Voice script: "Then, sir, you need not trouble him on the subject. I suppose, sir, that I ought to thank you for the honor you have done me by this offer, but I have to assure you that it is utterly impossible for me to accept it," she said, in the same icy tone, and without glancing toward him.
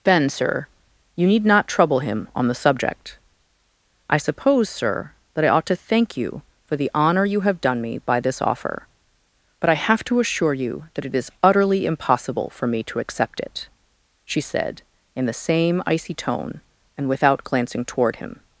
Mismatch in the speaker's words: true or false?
true